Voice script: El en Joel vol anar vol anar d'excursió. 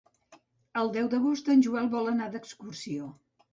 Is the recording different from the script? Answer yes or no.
yes